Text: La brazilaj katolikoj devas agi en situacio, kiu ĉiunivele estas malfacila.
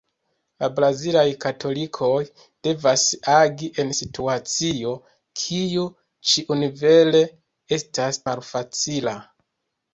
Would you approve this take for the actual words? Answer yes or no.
yes